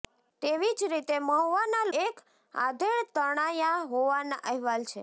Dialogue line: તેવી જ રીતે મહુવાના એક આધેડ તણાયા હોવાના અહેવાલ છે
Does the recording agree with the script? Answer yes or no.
yes